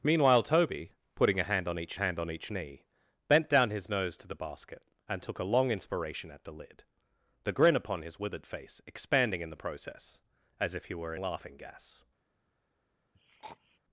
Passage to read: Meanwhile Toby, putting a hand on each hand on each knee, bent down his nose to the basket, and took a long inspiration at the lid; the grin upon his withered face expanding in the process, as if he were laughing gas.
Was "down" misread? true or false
false